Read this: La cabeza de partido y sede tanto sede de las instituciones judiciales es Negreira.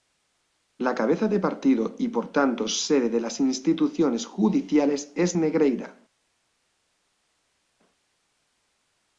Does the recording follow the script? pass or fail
fail